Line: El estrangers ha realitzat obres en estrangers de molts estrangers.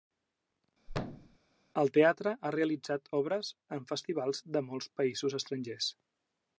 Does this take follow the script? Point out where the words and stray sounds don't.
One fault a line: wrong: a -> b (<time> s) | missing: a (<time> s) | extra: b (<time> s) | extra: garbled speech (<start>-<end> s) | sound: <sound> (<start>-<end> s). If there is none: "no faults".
sound: thud (0.9-1.4 s)
wrong: estrangers -> teatre (2.0 s)
wrong: estrangers -> festivals (3.9 s)
extra: països (5.0 s)